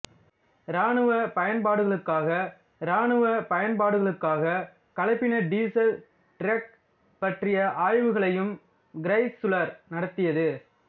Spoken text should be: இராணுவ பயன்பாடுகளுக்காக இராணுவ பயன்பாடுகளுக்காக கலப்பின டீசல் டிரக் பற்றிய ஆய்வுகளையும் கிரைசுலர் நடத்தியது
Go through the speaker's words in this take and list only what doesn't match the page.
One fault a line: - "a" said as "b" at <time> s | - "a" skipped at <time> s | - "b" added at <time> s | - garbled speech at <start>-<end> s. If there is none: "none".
none